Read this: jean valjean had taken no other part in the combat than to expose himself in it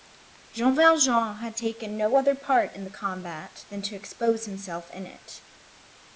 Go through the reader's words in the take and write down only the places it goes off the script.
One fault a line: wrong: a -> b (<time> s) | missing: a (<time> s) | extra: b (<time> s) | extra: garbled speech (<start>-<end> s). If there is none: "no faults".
no faults